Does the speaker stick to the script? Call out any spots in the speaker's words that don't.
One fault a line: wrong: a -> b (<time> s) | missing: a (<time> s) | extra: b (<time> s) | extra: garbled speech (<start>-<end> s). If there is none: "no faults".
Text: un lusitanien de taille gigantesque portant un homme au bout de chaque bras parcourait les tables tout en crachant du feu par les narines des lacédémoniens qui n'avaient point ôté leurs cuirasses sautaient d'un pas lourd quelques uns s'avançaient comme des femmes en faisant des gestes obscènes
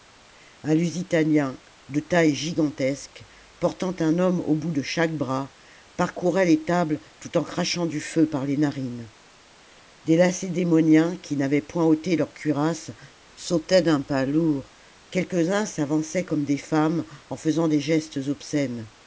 no faults